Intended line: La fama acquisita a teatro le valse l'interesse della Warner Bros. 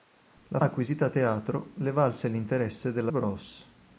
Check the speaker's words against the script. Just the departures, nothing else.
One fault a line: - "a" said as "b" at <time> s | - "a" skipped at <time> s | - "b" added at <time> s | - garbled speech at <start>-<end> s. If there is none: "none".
- "fama" skipped at 0.6 s
- "Warner" skipped at 3.1 s